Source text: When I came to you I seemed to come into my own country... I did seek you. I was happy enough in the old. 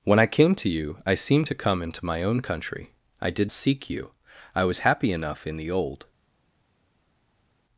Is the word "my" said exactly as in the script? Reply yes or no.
yes